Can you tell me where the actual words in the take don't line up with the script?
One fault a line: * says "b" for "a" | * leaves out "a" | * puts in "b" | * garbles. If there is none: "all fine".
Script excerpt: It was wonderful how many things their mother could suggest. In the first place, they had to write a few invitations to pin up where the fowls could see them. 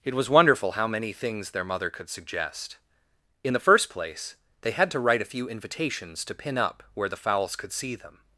all fine